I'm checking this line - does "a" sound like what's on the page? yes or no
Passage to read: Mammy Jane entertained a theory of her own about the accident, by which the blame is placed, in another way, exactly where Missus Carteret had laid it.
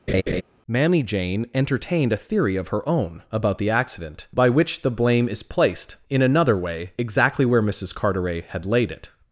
yes